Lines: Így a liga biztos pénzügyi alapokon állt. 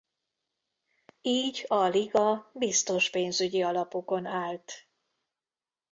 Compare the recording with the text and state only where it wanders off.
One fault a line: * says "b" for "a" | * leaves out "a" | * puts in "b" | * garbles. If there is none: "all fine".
all fine